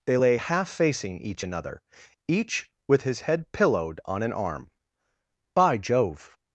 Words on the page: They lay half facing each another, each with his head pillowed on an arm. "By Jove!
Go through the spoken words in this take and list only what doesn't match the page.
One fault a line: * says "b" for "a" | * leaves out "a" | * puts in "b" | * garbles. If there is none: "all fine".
all fine